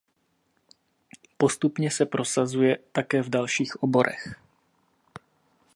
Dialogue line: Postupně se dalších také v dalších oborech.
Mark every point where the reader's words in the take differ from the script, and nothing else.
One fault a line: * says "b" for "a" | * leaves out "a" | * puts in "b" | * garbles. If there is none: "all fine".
* says "prosazuje" for "dalších"